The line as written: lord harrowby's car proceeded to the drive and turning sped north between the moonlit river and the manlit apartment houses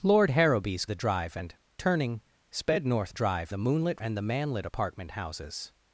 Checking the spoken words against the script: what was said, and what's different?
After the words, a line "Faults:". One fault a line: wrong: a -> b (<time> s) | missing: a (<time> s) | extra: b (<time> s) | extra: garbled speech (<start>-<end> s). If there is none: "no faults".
lord harrowby's the drive and turning sped north drive the moonlit and the manlit apartment houses
Faults:
missing: car proceeded to (0.9 s)
wrong: between -> drive (3.1 s)
missing: river (4.0 s)